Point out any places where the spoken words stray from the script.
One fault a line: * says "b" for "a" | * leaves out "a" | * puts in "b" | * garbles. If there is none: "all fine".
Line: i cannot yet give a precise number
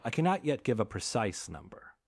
all fine